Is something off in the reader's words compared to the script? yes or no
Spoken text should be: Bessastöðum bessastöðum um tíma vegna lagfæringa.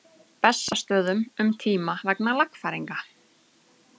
yes